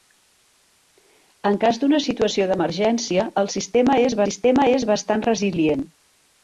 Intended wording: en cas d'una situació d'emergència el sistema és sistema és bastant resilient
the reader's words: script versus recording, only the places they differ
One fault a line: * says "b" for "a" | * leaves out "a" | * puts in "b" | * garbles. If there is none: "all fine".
all fine